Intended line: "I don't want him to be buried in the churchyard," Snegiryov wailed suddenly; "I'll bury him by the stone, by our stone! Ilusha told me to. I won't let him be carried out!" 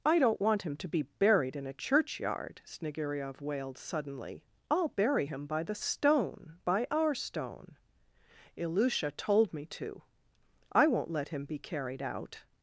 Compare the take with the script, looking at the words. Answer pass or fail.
fail